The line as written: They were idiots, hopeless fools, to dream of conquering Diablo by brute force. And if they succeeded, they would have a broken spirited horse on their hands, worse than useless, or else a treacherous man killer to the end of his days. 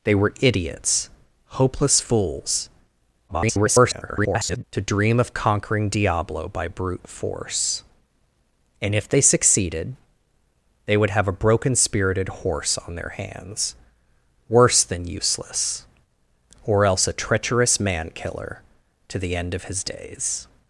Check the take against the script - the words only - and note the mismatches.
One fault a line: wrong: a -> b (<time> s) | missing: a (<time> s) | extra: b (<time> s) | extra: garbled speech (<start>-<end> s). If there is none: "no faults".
extra: garbled speech (3.3-4.6 s)